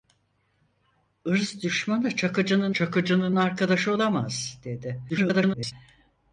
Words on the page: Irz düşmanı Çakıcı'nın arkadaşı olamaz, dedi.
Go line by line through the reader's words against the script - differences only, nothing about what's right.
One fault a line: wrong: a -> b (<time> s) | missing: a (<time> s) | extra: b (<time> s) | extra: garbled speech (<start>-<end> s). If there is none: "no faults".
extra: Çakıcı'nın (2.7 s)
extra: garbled speech (5.1-5.7 s)